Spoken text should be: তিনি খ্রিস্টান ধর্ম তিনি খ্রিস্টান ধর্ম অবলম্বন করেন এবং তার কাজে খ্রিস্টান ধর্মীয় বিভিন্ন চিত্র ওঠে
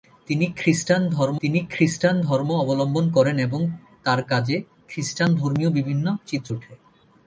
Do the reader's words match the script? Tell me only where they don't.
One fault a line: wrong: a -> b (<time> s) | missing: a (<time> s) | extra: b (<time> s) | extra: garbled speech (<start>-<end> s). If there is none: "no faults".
no faults